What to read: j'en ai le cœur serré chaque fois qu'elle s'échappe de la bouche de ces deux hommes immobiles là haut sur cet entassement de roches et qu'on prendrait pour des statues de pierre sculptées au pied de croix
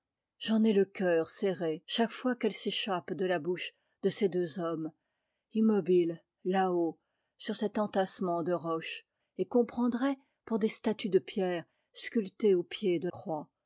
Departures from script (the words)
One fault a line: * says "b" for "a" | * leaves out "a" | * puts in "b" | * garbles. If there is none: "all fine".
all fine